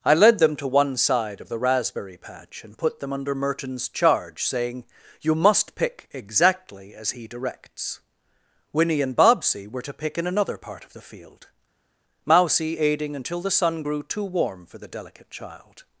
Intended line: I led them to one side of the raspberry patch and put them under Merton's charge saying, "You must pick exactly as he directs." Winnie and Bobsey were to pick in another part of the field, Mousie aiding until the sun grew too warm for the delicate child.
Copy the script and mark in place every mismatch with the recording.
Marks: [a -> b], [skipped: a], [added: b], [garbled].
I led them to one side of the raspberry patch and put them under Merton's charge saying, "You must pick exactly as he directs." Winnie and Bobsey were to pick in another part of the field, Mousie aiding until the sun grew too warm for the delicate child.